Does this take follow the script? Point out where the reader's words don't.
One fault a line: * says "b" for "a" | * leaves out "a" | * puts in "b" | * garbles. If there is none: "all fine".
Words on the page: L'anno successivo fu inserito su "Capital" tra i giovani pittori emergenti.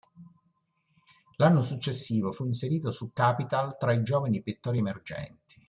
all fine